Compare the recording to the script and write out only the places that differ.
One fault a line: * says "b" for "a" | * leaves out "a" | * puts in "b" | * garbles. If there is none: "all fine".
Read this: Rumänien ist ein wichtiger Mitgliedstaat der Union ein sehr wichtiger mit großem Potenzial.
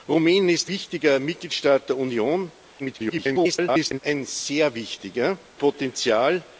* leaves out "ein"
* garbles
* leaves out "mit großem"